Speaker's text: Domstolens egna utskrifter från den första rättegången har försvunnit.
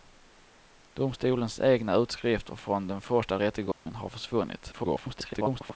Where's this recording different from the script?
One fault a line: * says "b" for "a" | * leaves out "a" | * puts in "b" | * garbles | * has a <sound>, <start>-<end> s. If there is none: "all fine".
* has a dropout, 3.7-3.9 s
* garbles